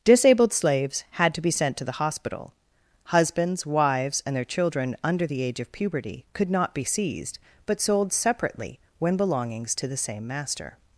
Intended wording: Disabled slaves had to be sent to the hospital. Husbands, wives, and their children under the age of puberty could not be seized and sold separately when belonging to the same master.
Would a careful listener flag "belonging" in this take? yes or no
yes